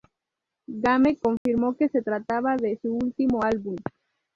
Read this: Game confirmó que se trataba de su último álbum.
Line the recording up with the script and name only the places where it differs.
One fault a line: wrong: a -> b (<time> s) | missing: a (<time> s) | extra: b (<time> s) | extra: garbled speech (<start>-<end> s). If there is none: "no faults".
no faults